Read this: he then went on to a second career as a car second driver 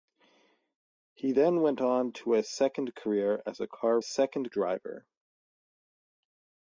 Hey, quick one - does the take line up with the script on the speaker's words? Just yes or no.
yes